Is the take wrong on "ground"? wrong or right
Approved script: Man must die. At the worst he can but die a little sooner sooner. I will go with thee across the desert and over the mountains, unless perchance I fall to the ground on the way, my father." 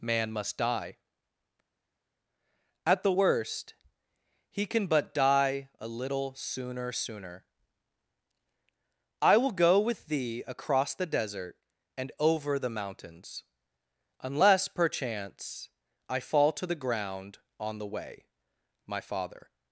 right